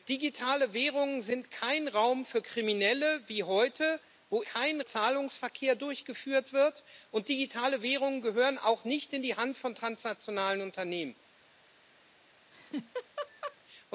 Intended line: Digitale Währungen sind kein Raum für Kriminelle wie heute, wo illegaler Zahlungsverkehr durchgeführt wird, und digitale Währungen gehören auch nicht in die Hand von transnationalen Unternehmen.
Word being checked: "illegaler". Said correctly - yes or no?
no